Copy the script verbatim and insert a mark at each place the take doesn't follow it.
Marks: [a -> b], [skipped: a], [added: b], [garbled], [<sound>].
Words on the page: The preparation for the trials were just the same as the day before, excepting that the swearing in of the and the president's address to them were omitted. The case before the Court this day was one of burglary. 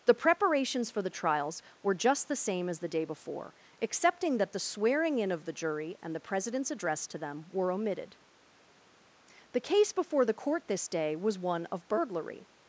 The [preparation -> preparations] for the trials were just the same as the day before, excepting that the swearing in of the [added: jury] and the president's address to them were omitted. The case before the Court this day was one of burglary.